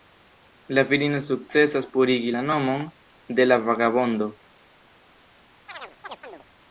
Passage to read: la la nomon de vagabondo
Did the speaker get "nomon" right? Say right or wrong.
right